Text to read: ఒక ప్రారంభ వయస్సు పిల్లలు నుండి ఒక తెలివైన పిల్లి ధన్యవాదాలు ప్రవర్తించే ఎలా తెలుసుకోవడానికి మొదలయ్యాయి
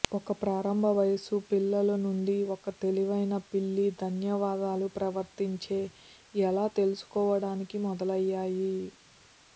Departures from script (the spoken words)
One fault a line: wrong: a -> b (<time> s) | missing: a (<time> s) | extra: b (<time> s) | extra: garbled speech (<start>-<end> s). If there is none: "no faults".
no faults